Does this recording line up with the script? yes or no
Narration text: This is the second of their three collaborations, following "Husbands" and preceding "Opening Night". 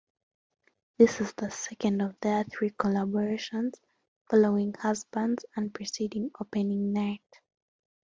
yes